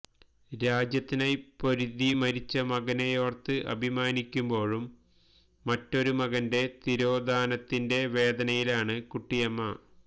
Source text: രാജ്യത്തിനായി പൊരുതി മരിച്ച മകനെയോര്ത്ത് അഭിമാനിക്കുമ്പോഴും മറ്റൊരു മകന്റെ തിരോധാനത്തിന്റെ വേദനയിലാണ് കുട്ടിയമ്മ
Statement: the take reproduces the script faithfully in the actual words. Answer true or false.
true